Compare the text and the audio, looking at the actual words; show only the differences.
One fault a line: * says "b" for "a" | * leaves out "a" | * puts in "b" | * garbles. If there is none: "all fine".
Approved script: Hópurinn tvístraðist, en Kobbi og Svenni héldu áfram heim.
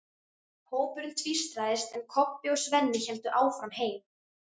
all fine